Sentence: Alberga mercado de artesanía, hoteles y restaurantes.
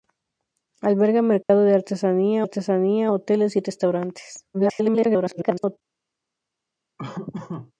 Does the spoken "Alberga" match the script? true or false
true